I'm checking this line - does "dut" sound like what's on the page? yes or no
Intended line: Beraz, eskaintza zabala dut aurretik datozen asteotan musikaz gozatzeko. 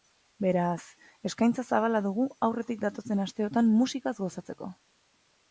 no